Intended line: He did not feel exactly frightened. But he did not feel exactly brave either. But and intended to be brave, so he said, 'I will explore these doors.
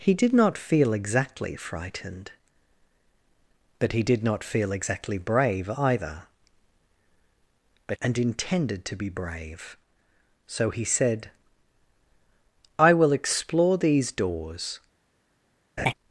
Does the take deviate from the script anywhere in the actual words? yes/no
no